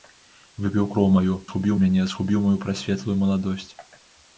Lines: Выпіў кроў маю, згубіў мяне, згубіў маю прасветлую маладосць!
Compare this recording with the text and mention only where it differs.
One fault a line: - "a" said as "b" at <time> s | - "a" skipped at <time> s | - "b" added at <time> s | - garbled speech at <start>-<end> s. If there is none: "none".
none